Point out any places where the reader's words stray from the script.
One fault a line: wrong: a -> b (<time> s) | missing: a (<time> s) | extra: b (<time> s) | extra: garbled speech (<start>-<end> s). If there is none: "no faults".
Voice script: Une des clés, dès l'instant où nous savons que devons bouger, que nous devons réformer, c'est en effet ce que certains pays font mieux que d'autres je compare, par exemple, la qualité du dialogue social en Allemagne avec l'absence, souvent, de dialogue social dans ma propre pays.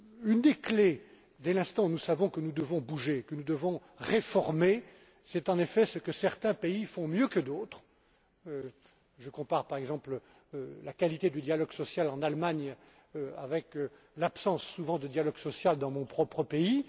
extra: nous (2.4 s)
wrong: ma -> mon (15.9 s)